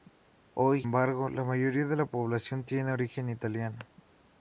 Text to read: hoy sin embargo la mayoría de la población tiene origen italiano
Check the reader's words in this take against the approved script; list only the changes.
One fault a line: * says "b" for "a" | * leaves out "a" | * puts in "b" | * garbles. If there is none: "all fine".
* leaves out "sin"